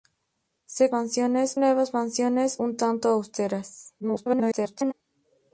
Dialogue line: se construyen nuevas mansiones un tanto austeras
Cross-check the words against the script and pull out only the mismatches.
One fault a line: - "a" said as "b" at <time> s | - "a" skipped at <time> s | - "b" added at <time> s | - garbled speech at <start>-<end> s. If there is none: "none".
- "construyen" said as "mansiones" at 0.9 s
- garbled speech at 4.0-4.9 s